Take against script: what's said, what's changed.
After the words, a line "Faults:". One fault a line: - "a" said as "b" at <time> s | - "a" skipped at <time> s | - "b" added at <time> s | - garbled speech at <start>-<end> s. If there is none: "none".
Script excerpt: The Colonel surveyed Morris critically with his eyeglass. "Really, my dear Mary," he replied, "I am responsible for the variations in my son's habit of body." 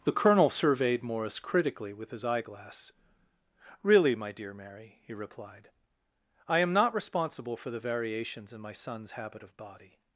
The Colonel surveyed Morris critically with his eyeglass. "Really, my dear Mary," he replied, "I am not responsible for the variations in my son's habit of body."
Faults:
- "not" added at 6.7 s